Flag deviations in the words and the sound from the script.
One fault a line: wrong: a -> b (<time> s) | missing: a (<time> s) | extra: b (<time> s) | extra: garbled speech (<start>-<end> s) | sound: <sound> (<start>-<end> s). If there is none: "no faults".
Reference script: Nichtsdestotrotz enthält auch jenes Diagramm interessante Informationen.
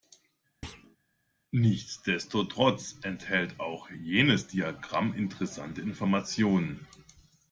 sound: thud (0.6-1.0 s)